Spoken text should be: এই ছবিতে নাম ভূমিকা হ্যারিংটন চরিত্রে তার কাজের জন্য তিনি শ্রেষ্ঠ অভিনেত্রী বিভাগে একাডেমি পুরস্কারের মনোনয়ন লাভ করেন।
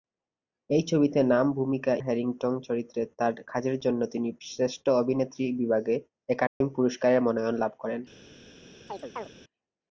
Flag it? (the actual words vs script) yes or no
no